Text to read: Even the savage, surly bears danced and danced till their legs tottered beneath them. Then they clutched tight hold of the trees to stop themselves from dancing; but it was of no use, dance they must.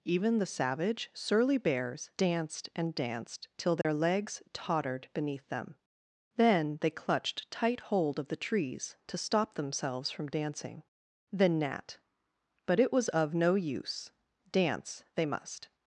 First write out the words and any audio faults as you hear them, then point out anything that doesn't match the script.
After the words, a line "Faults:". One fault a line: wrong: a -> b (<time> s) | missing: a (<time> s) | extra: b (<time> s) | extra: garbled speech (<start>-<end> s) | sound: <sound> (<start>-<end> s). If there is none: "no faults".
Even the savage, surly bears danced and danced till their legs tottered beneath them. Then they clutched tight hold of the trees to stop themselves from dancing; then nat but it was of no use, dance they must.
Faults:
sound: dropout (3.8-3.8 s)
extra: then nat (11.3 s)